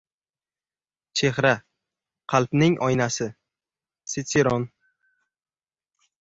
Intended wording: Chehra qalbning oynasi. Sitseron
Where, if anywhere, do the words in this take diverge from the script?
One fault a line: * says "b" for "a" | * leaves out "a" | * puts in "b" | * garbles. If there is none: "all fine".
all fine